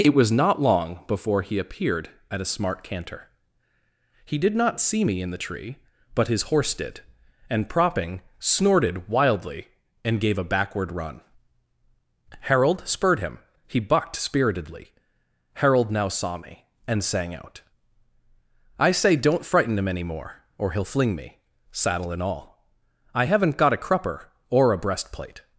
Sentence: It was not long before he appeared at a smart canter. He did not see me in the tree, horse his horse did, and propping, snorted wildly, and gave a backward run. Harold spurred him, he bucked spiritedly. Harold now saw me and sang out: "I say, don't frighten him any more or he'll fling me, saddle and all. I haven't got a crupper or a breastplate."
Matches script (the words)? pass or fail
fail